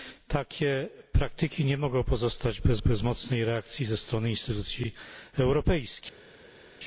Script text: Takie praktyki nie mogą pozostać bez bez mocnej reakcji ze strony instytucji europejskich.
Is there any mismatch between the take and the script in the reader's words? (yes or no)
no